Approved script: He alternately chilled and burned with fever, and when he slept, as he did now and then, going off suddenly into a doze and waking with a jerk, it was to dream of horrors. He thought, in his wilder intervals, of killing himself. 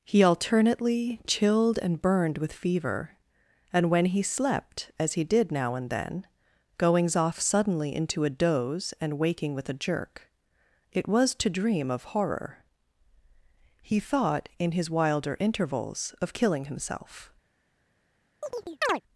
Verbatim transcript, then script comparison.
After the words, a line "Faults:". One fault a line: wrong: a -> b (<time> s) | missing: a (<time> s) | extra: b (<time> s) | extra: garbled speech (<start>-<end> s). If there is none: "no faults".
He alternately chilled and burned with fever, and when he slept, as he did now and then, goings off suddenly into a doze and waking with a jerk, it was to dream of horror. He thought, in his wilder intervals, of killing himself.
Faults:
wrong: going -> goings (6.8 s)
wrong: horrors -> horror (12.1 s)